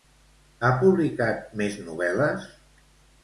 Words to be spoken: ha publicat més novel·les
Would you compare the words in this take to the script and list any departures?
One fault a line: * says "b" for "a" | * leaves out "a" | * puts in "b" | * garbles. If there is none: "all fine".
all fine